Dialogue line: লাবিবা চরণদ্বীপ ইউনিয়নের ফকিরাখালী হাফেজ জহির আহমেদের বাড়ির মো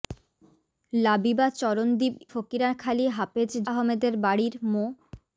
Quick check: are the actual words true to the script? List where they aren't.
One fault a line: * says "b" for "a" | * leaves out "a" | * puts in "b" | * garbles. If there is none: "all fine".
* leaves out "ইউনিয়নের"
* leaves out "জহির"